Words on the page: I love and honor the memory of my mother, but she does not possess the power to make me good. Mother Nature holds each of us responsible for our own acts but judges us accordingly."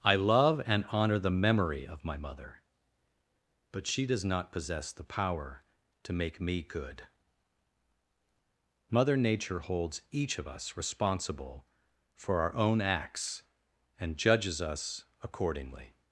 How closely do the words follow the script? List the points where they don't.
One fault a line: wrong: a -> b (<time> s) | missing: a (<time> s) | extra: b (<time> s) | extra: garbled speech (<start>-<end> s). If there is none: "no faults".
wrong: but -> and (14.0 s)